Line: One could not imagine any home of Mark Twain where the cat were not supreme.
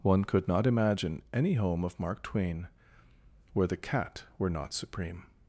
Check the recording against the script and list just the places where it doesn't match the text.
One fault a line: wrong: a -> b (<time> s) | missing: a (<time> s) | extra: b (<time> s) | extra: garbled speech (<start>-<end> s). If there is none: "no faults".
no faults